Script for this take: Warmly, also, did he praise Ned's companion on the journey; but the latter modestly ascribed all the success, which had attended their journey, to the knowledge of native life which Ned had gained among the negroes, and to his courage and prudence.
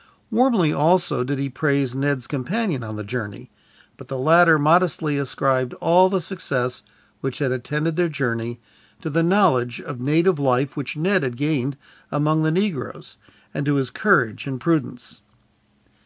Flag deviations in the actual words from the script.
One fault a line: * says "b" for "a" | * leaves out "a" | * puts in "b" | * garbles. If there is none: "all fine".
all fine